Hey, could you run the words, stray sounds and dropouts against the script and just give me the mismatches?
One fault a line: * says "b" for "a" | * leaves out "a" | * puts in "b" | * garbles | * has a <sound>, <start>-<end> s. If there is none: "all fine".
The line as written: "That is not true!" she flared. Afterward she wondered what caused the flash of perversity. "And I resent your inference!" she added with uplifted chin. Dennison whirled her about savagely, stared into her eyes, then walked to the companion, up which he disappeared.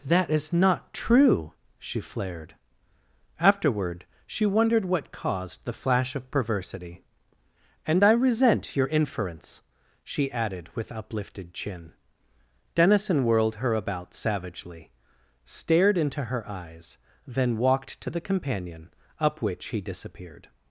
all fine